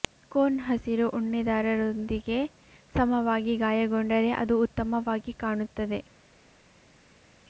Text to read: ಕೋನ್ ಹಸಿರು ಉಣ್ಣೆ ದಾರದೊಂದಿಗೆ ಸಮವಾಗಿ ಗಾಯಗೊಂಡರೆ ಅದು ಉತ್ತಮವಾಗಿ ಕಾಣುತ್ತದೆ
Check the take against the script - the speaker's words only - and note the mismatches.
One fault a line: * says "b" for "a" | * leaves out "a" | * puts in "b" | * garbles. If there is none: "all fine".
all fine